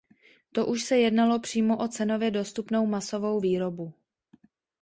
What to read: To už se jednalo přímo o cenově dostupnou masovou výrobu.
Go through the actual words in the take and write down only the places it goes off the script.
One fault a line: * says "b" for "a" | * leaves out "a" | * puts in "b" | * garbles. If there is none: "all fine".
all fine